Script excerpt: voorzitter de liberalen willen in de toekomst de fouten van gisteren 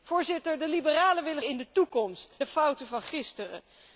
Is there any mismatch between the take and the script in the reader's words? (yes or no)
no